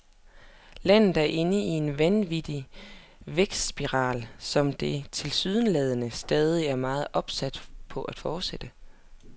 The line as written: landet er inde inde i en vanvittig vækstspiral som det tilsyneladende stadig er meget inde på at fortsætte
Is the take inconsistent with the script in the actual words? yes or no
yes